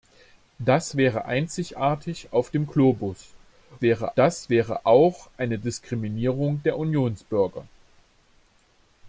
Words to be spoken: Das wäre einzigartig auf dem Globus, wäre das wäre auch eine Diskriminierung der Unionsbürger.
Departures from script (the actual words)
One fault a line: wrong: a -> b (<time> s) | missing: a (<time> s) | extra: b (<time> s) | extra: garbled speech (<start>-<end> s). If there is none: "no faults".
no faults